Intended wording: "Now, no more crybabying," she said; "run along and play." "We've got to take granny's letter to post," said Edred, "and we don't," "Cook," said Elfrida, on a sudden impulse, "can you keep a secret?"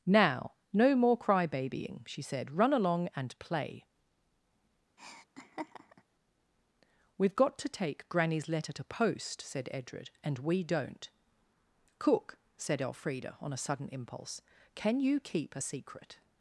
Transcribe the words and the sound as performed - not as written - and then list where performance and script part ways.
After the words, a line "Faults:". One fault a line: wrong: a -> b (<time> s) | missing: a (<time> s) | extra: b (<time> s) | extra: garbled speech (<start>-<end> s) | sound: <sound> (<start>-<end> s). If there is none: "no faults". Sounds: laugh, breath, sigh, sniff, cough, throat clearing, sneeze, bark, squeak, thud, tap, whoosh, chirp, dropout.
"Now, no more crybabying," she said; "run along and play." "We've got to take granny's letter to post," said Edred, "and we don't," "Cook," said Elfrida, on a sudden impulse, "can you keep a secret?"
Faults:
sound: laugh (5.0-6.0 s)